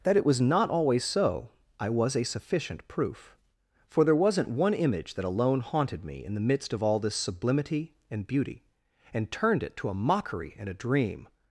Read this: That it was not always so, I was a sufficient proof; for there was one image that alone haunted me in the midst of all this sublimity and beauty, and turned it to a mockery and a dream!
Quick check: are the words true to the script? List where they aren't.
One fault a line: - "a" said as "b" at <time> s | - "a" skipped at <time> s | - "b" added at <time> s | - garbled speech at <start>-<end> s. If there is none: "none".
- "was" said as "wasn't" at 4.2 s